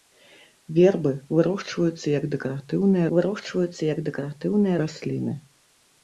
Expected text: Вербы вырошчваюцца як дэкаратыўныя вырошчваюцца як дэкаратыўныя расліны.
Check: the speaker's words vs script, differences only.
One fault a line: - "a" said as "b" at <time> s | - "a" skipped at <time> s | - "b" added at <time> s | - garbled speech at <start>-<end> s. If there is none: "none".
none